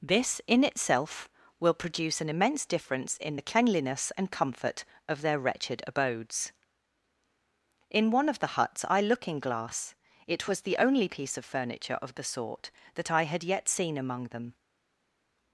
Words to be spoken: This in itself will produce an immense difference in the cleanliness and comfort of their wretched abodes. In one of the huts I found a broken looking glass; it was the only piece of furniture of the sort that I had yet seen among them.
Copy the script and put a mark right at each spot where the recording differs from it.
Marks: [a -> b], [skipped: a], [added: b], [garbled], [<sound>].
This in itself will produce an immense difference in the cleanliness and comfort of their wretched abodes. In one of the huts I [skipped: found a broken] looking glass; it was the only piece of furniture of the sort that I had yet seen among them.